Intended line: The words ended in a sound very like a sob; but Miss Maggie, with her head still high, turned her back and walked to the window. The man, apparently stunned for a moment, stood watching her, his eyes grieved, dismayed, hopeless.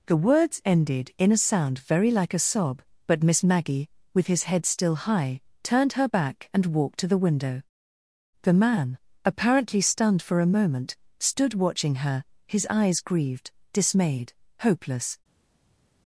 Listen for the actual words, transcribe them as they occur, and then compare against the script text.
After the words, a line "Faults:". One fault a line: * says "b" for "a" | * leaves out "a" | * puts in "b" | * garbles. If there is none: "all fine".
The words ended in a sound very like a sob; but Miss Maggie, with his head still high, turned her back and walked to the window. The man, apparently stunned for a moment, stood watching her, his eyes grieved, dismayed, hopeless.
Faults:
* says "his" for "her"